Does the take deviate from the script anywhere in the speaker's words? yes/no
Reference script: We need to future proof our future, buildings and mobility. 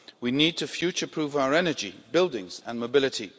yes